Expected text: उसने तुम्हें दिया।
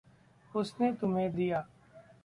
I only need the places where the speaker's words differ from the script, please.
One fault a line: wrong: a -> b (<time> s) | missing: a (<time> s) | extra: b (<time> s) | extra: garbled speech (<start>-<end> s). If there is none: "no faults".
no faults